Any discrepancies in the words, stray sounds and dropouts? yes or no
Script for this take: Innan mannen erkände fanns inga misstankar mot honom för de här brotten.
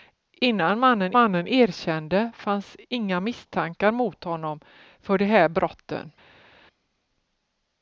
yes